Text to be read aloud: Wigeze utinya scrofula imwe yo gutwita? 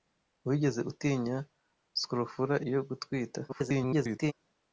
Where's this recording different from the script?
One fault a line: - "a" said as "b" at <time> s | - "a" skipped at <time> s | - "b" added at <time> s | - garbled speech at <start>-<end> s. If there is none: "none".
- "imwe" skipped at 2.5 s
- garbled speech at 3.5-4.3 s